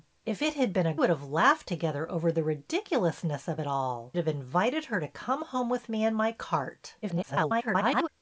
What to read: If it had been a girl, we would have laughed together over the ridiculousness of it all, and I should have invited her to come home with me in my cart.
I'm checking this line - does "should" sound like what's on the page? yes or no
no